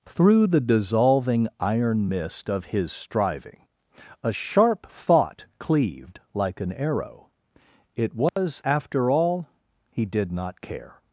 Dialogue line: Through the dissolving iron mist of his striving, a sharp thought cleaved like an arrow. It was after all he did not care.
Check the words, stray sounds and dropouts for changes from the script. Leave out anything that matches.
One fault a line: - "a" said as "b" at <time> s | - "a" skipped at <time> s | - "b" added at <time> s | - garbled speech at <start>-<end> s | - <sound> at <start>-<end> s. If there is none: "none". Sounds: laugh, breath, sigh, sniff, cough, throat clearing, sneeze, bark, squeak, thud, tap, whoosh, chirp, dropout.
- dropout at 8.3-8.4 s